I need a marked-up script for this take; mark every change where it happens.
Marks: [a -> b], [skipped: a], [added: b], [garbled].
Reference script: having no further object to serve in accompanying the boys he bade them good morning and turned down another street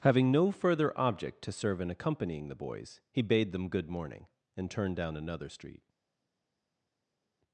having no further object to serve in accompanying the boys he bade them good morning and turned down another street